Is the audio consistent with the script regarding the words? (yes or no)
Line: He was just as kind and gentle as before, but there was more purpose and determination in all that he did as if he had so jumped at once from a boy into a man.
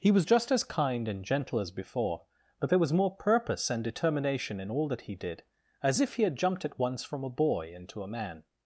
no